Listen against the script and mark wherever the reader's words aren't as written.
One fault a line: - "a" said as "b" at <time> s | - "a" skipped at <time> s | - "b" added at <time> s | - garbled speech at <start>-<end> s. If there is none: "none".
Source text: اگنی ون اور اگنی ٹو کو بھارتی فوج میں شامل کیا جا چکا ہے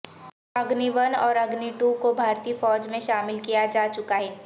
none